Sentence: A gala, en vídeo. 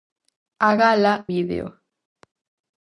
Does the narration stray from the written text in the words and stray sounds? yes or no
yes